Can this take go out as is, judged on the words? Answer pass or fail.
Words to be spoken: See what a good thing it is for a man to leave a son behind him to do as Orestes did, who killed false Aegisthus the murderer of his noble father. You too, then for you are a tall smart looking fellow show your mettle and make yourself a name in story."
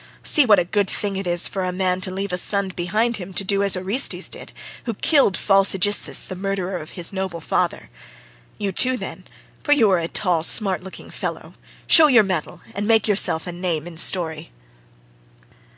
pass